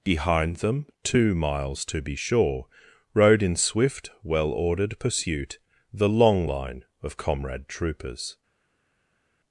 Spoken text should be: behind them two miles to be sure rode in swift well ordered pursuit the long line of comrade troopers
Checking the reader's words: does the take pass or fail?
pass